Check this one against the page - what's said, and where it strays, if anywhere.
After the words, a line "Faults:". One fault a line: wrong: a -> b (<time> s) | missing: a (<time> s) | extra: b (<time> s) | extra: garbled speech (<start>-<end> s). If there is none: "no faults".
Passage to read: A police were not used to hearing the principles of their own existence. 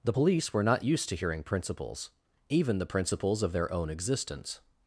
The police were not used to hearing principles, even the principles of their own existence.
Faults:
wrong: A -> The (0.0 s)
extra: principles even (1.4 s)